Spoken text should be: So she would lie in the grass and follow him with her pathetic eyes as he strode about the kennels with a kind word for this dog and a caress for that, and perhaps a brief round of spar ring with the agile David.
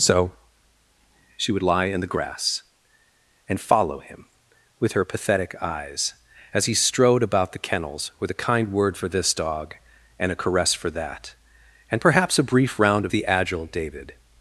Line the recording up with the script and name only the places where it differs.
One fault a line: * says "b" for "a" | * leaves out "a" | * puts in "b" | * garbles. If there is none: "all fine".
* leaves out "spar ring with"